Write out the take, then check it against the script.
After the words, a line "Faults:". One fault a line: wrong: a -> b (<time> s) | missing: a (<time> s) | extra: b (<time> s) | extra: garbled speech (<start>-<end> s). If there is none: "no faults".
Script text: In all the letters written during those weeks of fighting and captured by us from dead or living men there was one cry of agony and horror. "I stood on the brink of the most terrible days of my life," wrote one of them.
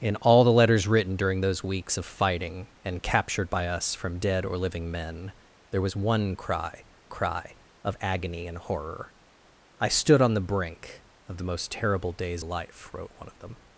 In all the letters written during those weeks of fighting and captured by us from dead or living men there was one cry cry of agony and horror. "I stood on the brink of the most terrible days life," wrote one of them.
Faults:
extra: cry (7.1 s)
missing: of my (12.4 s)